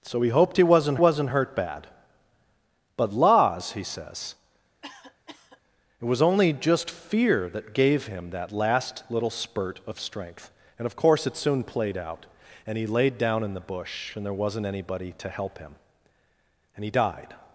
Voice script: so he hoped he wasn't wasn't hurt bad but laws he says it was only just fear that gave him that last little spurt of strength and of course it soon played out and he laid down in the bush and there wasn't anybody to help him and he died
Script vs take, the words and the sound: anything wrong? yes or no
yes